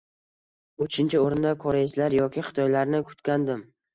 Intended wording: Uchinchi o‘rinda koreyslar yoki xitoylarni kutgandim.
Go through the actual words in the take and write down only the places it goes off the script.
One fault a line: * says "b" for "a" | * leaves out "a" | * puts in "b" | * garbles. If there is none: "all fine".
all fine